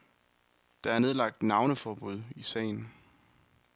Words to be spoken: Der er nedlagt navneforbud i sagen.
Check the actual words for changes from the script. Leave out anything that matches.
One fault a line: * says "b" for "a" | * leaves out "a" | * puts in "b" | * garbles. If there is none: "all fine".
all fine